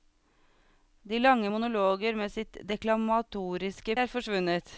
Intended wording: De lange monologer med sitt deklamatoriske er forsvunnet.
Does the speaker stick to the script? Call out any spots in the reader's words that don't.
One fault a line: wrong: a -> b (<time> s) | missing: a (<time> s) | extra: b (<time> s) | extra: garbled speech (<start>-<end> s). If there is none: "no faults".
no faults